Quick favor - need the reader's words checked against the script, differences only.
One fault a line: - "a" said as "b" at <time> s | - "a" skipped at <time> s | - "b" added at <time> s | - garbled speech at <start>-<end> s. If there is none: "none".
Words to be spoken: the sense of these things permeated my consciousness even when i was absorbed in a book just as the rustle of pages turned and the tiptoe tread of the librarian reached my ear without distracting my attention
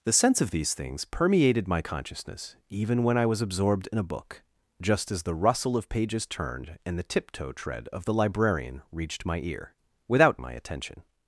- "distracting" skipped at 10.4 s